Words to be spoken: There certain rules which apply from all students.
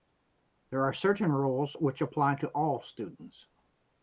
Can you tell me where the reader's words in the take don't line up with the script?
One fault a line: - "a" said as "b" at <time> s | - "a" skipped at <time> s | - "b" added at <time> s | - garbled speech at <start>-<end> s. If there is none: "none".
- "are" added at 0.8 s
- "from" said as "to" at 2.4 s